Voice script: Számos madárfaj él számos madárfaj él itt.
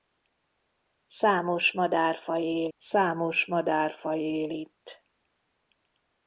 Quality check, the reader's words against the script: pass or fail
pass